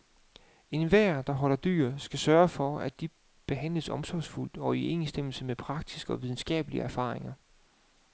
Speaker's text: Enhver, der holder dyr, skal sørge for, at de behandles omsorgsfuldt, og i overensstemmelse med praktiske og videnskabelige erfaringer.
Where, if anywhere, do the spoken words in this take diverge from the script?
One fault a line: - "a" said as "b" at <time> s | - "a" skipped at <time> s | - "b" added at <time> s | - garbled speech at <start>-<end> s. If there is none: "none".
none